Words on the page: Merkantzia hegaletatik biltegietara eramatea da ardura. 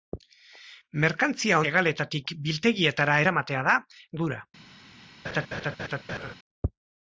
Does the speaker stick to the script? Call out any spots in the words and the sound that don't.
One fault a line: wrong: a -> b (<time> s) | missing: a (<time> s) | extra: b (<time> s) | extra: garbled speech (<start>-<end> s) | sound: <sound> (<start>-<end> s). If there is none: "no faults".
sound: laugh (5.2-6.3 s)